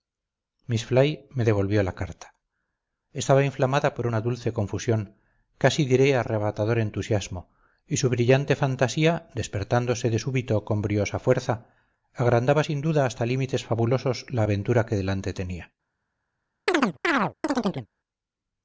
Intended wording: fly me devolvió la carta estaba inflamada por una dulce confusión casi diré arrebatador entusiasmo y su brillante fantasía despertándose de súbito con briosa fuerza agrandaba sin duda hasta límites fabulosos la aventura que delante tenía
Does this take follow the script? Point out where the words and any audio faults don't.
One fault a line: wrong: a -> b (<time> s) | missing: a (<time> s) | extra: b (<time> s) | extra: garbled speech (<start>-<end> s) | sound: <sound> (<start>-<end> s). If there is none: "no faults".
sound: chirp (16.7-17.9 s)